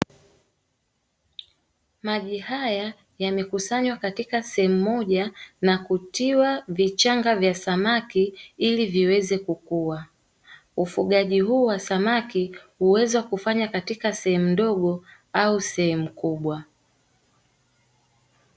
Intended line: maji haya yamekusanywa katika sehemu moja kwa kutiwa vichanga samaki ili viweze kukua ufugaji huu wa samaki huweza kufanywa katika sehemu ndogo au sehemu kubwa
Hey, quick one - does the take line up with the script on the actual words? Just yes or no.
no